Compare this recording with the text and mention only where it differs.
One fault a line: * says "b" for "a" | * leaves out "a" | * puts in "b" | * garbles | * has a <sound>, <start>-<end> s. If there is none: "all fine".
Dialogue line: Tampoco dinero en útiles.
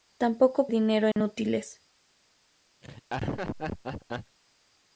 * has a dropout, 1.1-1.2 s
* has a laugh, 2.8-4.4 s